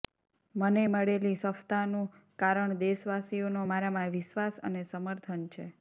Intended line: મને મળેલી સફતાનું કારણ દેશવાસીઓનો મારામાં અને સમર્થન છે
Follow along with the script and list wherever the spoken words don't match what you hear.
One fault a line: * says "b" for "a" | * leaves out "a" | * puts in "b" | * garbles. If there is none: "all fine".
* puts in "વિશ્વાસ"